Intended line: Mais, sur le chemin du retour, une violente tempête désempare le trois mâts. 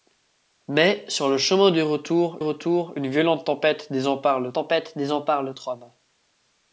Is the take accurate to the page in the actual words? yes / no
no